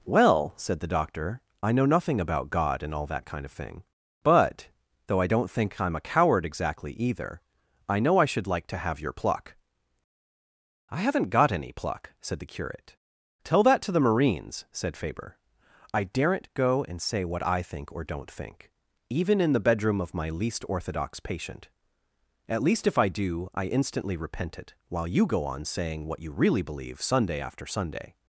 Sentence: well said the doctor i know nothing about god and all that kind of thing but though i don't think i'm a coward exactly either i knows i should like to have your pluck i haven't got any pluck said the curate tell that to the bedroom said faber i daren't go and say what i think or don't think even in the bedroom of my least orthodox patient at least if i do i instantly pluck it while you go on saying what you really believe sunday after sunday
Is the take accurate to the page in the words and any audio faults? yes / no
no